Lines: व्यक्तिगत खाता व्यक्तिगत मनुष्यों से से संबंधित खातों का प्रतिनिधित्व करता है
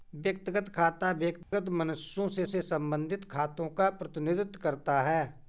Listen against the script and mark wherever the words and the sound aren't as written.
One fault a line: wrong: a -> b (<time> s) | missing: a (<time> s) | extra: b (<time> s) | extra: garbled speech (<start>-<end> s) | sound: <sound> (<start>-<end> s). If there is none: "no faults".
sound: dropout (1.4-1.5 s)